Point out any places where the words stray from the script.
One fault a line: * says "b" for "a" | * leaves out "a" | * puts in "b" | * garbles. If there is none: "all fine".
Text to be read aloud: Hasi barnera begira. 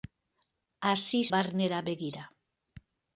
all fine